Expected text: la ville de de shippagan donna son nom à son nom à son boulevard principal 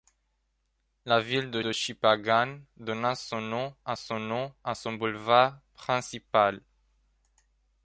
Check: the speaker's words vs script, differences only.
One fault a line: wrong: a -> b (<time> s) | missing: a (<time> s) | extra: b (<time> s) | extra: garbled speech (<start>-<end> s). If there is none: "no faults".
no faults